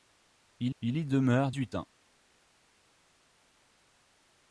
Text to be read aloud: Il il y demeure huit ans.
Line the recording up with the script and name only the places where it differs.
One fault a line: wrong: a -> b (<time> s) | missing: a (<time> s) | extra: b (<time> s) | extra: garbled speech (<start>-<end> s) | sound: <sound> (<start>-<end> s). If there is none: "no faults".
no faults